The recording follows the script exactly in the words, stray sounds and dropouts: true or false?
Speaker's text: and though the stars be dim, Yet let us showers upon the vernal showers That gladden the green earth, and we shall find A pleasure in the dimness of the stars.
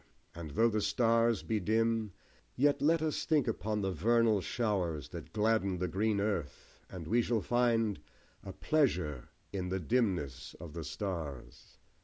false